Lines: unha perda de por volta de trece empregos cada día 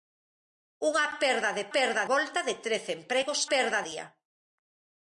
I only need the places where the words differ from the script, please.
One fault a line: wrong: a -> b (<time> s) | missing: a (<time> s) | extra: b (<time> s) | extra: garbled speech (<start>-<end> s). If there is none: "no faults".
wrong: por -> perda (1.7 s)
wrong: cada -> perda (3.5 s)